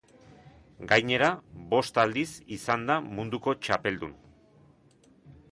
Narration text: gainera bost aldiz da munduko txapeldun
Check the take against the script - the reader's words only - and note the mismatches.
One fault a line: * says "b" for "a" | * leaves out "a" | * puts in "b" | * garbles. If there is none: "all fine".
* puts in "izan"